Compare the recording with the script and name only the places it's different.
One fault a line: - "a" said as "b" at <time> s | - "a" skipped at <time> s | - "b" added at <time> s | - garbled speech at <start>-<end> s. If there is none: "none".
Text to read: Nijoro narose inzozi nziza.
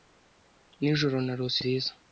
- "inzozi" skipped at 1.6 s